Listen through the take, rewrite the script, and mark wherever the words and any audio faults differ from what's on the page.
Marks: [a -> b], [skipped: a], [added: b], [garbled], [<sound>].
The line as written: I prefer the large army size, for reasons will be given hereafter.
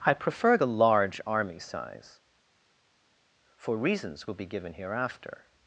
I prefer the large army size, for reasons will be given hereafter.